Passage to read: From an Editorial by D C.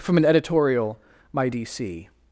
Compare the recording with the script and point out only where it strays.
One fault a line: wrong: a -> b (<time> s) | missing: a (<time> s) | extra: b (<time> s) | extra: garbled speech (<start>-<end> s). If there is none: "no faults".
wrong: by -> my (1.3 s)